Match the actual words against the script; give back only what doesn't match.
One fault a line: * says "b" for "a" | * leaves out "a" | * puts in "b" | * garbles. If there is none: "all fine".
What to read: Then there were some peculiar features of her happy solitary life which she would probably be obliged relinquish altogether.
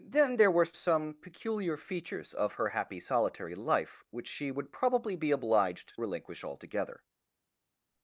all fine